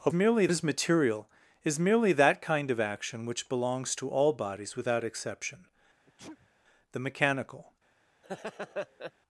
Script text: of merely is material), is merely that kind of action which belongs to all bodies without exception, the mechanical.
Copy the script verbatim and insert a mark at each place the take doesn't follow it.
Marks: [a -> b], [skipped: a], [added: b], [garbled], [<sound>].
of merely is material), is merely that kind of action which belongs to all bodies without exception, [sneeze] the mechanical. [laugh]